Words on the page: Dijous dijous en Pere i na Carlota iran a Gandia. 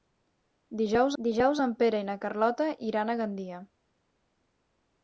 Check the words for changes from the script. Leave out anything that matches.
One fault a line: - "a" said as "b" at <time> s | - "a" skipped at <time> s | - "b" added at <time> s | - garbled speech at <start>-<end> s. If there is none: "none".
none